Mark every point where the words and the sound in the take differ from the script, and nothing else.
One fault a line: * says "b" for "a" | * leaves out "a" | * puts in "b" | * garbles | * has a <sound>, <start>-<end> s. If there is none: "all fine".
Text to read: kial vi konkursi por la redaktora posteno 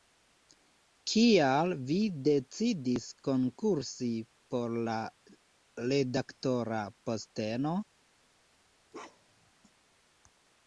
* puts in "decidis"
* has a bark, 8.9-9.5 s